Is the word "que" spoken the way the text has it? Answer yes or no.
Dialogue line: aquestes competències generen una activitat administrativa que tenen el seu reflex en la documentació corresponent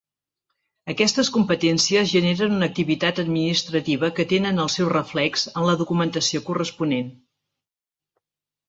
yes